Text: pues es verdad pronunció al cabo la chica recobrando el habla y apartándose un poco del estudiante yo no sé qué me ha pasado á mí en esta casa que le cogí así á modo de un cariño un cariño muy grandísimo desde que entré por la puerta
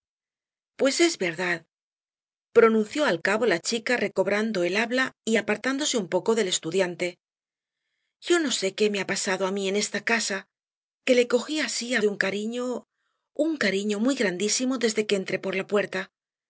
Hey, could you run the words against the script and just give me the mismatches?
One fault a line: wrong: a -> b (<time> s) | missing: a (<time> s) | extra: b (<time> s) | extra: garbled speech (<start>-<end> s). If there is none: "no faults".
missing: modo (12.0 s)